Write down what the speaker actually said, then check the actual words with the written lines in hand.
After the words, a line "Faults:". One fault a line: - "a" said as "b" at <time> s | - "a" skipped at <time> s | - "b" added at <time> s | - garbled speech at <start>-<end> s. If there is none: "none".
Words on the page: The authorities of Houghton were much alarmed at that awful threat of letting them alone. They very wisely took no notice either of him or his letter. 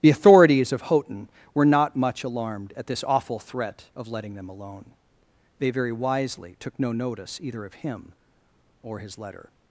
The authorities of Houghton were not much alarmed at this awful threat of letting them alone. They very wisely took no notice either of him or his letter.
Faults:
- "not" added at 1.6 s
- "that" said as "this" at 2.9 s